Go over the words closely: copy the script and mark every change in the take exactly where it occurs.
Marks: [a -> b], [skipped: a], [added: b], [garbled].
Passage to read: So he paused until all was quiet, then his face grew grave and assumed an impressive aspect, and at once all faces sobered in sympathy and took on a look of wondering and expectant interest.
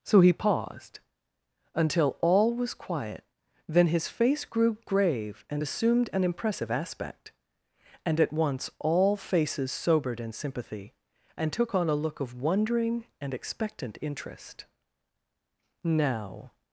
So he paused until all was quiet, then his face grew grave and assumed an impressive aspect, and at once all faces sobered in sympathy and took on a look of wondering and expectant interest. [added: Now]